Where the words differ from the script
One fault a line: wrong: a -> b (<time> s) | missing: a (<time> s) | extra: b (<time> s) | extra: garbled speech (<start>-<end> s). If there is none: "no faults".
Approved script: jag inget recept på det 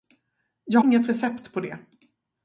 no faults